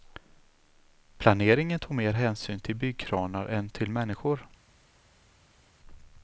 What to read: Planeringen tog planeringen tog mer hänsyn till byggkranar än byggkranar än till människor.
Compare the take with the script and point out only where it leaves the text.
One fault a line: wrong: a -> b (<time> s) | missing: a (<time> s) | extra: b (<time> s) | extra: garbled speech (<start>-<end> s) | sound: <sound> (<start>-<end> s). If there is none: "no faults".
missing: planeringen tog (1.9 s)
missing: byggkranar än (3.7 s)